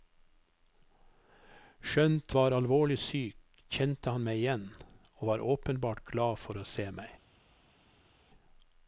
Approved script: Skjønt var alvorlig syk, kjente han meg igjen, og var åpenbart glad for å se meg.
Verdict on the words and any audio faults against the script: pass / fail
pass